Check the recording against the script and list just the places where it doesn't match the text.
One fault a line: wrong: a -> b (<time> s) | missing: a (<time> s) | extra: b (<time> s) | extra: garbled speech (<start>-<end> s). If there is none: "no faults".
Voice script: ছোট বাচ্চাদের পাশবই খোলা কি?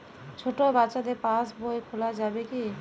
extra: যাবে (2.2 s)